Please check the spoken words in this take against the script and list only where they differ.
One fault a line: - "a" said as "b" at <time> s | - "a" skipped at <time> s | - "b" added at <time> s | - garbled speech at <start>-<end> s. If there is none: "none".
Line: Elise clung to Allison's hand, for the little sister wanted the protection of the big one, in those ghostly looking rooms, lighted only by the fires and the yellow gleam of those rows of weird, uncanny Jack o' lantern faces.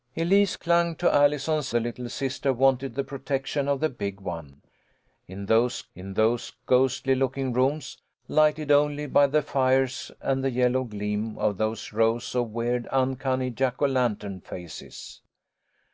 - "hand for" skipped at 1.7 s
- "in those" added at 5.9 s